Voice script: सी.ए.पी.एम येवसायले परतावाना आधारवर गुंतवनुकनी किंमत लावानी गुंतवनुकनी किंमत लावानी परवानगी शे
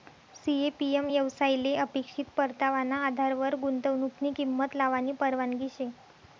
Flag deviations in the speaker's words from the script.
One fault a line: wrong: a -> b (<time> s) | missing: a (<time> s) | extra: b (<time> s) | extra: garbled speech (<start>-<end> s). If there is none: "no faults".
extra: अपेक्षित (1.8 s)
missing: गुंतवनुकनी किंमत लावानी (5.1 s)